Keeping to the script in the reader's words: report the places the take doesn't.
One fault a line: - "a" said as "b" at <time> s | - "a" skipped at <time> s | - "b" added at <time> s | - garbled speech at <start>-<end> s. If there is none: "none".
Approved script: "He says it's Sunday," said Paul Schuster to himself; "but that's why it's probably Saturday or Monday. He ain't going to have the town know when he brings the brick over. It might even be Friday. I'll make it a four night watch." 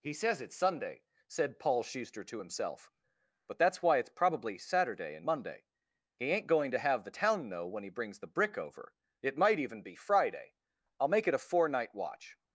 - "or" said as "and" at 5.1 s